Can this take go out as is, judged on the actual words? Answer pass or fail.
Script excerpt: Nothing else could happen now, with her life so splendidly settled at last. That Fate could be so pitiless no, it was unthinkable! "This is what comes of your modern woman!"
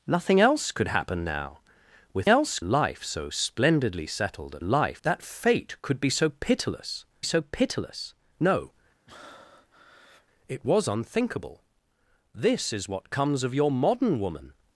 fail